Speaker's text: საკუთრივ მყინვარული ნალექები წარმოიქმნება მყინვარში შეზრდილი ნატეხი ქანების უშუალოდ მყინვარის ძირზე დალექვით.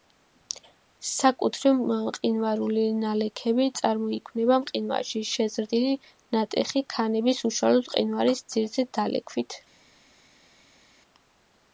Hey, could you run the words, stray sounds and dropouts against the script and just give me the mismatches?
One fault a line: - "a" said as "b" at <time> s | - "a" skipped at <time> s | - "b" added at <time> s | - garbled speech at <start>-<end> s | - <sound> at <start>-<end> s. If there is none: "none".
none